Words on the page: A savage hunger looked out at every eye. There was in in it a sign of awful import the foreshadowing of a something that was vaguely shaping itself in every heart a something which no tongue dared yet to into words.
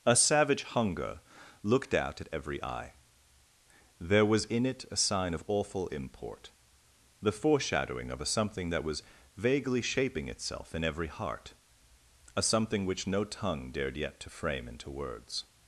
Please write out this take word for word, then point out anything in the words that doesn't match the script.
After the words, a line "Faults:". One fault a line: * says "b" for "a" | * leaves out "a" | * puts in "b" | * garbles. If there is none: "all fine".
A savage hunger looked out at every eye. There was in it a sign of awful import the foreshadowing of a something that was vaguely shaping itself in every heart a something which no tongue dared yet to frame into words.
Faults:
* leaves out "in"
* puts in "frame"